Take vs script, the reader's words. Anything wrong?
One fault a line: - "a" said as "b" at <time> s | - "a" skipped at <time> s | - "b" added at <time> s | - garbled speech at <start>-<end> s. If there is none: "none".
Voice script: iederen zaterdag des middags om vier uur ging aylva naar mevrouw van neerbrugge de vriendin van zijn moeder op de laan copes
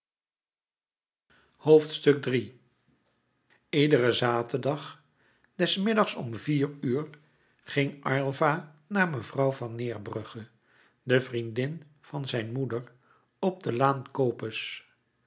none